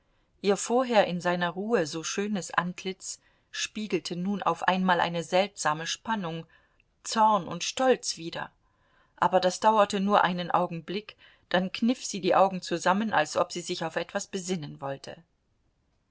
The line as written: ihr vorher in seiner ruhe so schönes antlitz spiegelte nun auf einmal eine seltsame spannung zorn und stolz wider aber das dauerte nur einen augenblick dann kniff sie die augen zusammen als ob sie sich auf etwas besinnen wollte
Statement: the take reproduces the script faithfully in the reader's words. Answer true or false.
true